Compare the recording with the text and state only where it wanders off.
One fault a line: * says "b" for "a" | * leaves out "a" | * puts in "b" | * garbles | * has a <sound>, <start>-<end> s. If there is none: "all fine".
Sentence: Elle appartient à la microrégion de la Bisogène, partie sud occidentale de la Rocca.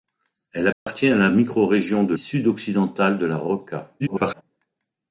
* has a dropout, 0.7-0.9 s
* leaves out "la Bisogène partie"
* garbles